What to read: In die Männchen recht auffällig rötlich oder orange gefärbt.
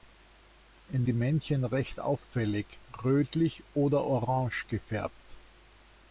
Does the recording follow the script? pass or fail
pass